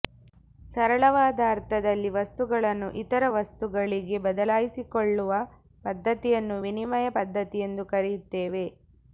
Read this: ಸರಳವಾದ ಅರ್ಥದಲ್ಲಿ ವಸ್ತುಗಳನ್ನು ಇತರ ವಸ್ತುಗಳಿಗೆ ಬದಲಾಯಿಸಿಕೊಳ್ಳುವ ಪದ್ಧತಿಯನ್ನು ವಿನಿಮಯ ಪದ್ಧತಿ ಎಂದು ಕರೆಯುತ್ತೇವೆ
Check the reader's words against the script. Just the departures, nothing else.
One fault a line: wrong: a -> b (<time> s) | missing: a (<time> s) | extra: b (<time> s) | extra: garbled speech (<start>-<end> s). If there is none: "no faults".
no faults